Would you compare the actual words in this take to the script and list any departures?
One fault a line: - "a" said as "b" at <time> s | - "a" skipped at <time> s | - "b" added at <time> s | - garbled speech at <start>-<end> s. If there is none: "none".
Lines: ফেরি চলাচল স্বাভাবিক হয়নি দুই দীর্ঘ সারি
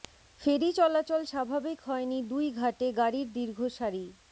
- "ঘাটে গাড়ির" added at 2.5 s